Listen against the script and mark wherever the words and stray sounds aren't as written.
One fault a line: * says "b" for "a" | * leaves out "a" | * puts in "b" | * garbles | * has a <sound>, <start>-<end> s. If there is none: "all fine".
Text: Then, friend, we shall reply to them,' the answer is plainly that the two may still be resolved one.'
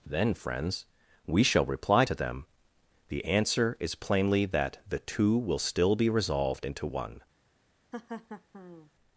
* says "friends" for "friend"
* says "will" for "may"
* puts in "into"
* has a laugh, 7.9-8.9 s